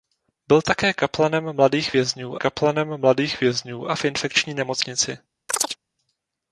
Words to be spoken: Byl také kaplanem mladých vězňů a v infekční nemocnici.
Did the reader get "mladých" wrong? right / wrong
right